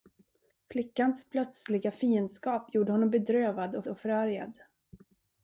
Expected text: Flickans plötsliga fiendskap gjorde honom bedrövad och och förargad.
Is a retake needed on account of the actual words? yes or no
no